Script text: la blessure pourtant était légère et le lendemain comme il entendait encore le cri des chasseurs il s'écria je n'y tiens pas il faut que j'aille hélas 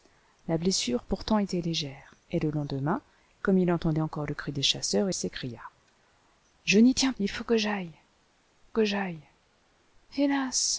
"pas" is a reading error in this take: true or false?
true